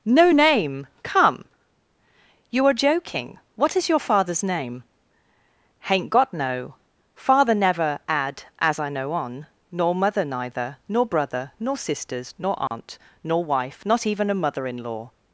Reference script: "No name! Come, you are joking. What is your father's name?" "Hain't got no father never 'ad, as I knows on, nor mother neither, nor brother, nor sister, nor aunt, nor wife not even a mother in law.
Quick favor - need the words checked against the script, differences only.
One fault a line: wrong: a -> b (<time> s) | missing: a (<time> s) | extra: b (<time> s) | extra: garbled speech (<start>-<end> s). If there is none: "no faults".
wrong: knows -> know (8.9 s)
wrong: sister -> sisters (11.8 s)